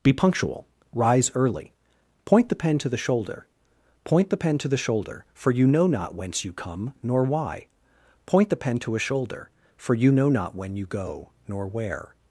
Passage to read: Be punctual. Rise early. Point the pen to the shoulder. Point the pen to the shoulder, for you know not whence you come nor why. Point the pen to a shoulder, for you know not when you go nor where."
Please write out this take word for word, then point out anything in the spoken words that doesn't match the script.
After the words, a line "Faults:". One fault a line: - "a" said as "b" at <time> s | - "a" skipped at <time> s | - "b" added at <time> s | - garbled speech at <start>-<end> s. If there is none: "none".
Be punctual. Rise early. Point the pen to the shoulder. Point the pen to the shoulder, for you know not whence you come nor why. Point the pen to a shoulder, for you know not when you go nor where."
Faults:
none